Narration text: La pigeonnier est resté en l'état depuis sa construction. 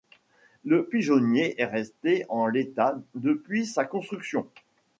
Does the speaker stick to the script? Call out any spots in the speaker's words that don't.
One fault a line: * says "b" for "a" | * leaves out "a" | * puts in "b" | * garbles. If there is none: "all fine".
* says "Le" for "La"